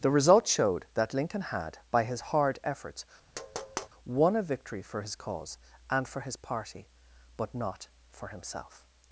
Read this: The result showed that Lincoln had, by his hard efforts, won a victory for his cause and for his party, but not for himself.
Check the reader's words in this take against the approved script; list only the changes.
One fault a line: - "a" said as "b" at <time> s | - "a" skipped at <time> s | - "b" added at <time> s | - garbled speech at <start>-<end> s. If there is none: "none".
none